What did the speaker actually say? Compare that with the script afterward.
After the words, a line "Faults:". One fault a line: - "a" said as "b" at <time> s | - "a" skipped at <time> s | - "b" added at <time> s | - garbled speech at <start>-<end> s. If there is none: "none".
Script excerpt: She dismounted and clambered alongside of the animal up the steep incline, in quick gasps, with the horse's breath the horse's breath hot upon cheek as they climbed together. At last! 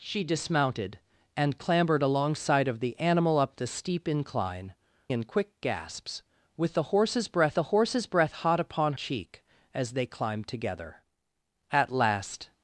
She dismounted and clambered alongside of the animal up the steep incline, in quick gasps, with the horse's breath the horse's breath hot upon cheek as they climbed together. At last!
Faults:
none